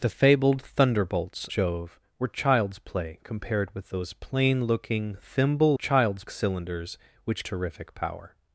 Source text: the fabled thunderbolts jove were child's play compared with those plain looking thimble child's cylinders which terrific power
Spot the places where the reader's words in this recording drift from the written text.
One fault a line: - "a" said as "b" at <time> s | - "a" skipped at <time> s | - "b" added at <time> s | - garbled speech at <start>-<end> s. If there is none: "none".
none